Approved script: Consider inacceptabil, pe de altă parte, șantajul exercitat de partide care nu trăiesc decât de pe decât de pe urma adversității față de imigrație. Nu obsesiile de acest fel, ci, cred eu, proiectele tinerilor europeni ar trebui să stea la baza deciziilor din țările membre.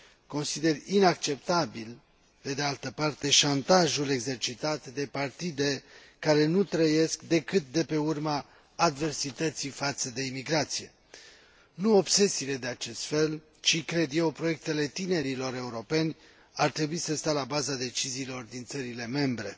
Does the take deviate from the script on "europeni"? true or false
false